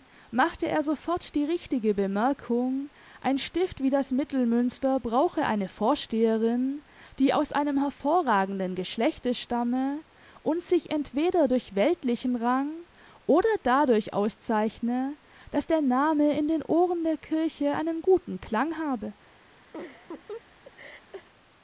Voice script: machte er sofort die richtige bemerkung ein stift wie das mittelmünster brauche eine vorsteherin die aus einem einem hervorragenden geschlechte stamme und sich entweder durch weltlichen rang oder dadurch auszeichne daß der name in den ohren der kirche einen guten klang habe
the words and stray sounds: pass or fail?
fail